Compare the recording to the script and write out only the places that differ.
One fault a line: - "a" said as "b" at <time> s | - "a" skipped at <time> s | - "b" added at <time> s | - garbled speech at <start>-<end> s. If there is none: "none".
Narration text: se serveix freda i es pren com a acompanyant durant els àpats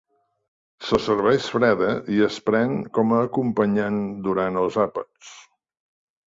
none